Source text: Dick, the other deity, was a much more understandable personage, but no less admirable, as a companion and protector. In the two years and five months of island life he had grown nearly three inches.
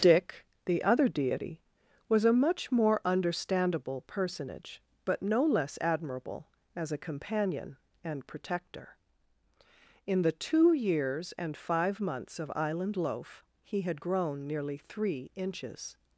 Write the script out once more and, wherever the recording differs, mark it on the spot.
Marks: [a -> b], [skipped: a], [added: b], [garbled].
Dick, the other deity, was a much more understandable personage, but no less admirable, as a companion and protector. In the two years and five months of island [life -> loaf] he had grown nearly three inches.